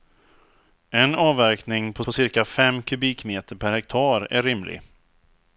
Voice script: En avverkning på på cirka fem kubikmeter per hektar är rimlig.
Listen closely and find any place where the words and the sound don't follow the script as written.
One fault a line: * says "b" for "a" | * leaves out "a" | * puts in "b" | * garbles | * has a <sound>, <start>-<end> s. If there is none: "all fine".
all fine